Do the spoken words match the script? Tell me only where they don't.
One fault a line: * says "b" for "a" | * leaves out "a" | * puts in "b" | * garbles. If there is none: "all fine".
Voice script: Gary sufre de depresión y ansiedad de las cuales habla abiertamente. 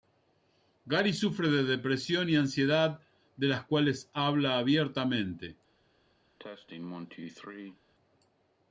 all fine